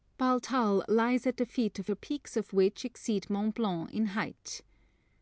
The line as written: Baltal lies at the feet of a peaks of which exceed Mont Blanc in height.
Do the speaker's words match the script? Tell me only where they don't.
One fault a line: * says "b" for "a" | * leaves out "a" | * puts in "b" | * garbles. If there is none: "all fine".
all fine